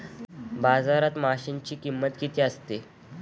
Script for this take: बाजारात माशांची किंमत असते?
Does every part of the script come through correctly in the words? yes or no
no